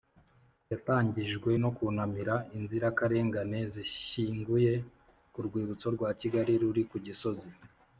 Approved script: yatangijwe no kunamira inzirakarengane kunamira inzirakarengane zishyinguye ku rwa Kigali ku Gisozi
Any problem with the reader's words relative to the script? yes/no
yes